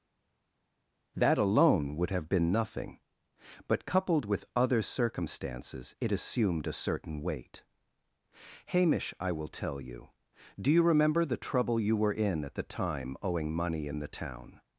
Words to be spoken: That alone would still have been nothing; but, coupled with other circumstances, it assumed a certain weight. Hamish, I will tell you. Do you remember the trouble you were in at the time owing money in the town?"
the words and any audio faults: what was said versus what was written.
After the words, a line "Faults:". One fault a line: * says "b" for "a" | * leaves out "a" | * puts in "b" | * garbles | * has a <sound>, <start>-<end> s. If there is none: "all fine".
That alone would have been nothing; but, coupled with other circumstances, it assumed a certain weight. Hamish, I will tell you. Do you remember the trouble you were in at the time owing money in the town?"
Faults:
* leaves out "still"